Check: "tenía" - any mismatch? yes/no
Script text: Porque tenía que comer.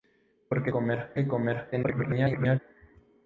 yes